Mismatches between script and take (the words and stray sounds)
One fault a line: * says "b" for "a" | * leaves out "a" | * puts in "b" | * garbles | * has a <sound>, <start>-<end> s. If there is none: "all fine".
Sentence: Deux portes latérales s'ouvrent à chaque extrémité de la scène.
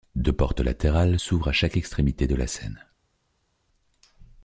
all fine